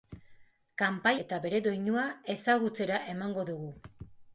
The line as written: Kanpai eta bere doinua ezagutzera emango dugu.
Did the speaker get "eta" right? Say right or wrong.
right